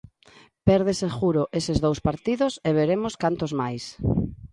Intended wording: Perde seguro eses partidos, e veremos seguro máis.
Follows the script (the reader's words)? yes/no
no